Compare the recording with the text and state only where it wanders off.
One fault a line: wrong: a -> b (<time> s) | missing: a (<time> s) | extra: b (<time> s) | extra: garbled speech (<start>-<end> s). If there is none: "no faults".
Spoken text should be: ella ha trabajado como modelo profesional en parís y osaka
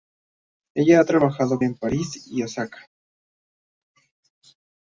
missing: como modelo profesional (1.6 s)